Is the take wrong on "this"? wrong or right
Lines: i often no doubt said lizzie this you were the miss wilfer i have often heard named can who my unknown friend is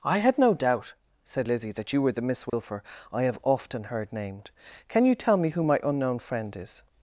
wrong